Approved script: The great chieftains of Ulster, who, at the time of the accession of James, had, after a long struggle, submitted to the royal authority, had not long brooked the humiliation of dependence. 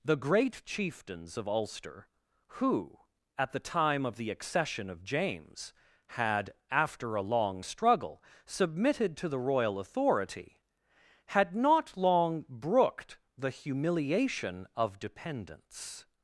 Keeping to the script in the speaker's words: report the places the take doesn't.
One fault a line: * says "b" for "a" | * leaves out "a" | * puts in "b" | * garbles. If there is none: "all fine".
all fine